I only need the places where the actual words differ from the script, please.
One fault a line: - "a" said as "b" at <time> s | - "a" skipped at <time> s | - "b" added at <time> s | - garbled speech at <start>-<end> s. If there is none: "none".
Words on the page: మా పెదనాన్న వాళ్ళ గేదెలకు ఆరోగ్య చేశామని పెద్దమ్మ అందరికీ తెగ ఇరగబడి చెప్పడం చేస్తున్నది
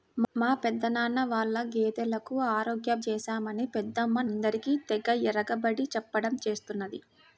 none